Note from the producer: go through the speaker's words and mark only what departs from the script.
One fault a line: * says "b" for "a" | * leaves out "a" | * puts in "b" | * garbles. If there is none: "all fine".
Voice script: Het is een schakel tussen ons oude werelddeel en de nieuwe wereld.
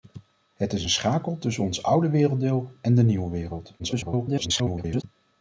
* garbles